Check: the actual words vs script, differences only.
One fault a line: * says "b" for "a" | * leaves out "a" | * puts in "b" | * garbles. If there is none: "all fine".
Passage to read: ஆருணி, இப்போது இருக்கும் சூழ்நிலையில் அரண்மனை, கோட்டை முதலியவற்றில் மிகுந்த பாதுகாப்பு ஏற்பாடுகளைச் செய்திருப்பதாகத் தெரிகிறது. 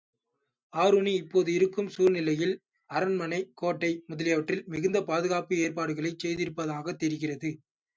all fine